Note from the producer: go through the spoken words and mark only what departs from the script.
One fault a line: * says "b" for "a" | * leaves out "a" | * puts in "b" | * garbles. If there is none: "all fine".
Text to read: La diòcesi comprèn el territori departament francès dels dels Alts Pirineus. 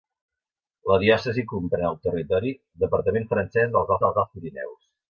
all fine